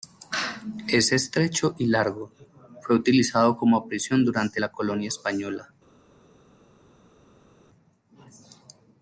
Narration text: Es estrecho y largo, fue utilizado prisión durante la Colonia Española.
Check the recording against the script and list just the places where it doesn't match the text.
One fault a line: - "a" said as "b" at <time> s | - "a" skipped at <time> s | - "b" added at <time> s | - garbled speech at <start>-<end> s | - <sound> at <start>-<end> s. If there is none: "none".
- "como" added at 3.5 s